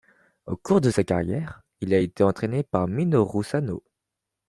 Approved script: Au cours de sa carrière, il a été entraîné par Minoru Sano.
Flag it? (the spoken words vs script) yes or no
no